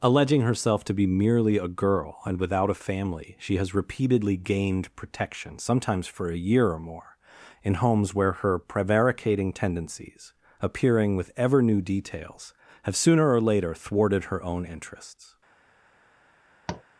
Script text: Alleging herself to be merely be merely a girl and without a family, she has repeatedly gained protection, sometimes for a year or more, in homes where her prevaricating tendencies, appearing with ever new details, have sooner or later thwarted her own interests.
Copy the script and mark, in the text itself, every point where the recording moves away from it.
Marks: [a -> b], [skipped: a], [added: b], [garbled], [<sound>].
Alleging herself to be merely [skipped: be merely] a girl and without a family, she has repeatedly gained protection, sometimes for a year or more, in homes where her prevaricating tendencies, appearing with ever new details, have sooner or later thwarted her own interests. [tap]